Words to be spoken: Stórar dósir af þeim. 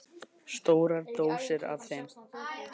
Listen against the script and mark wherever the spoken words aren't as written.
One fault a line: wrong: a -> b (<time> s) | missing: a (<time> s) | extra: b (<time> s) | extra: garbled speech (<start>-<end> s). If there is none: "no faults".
no faults